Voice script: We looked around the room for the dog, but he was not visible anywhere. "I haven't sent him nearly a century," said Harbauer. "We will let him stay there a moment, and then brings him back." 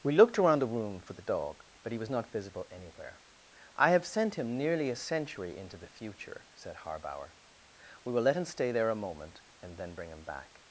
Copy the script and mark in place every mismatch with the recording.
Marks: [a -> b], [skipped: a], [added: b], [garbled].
We looked around the room for the dog, but he was not visible anywhere. "I [haven't -> have] sent him nearly a century," [added: into the future] said Harbauer. "We will let him stay there a moment, and then [brings -> bring] him back."